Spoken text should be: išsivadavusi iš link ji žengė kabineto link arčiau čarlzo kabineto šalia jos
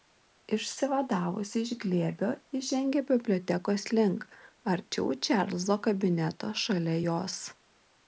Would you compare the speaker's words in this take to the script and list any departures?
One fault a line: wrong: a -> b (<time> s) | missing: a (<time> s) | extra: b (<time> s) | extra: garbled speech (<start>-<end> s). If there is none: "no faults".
wrong: link -> glėbio (1.8 s)
wrong: kabineto -> bibliotekos (3.1 s)